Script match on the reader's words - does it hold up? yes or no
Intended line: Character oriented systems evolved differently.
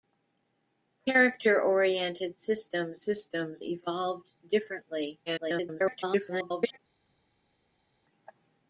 no